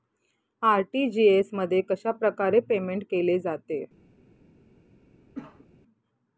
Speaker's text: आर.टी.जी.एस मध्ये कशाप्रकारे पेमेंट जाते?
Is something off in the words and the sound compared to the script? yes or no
yes